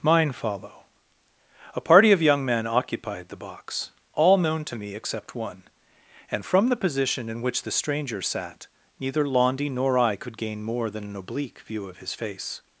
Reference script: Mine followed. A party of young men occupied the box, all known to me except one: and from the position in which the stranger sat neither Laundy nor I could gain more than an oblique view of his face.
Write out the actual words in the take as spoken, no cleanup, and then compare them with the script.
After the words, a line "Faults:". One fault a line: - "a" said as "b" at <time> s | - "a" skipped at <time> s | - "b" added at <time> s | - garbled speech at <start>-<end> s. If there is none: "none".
Mine follow. A party of young men occupied the box, all known to me except one: and from the position in which the stranger sat neither Laundy nor I could gain more than an oblique view of his face.
Faults:
- "followed" said as "follow" at 0.3 s